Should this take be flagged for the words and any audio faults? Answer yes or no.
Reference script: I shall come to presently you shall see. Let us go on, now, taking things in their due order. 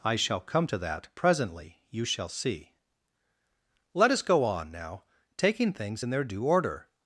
yes